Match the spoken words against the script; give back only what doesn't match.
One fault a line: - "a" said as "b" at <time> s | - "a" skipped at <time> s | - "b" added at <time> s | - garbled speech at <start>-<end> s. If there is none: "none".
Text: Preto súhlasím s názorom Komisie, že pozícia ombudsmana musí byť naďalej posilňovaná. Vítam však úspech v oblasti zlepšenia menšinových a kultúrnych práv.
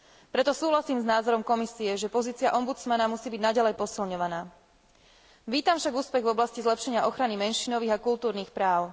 - "ochrany" added at 7.0 s